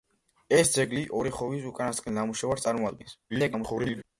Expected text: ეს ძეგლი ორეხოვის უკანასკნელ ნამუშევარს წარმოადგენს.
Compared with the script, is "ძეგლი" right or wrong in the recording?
right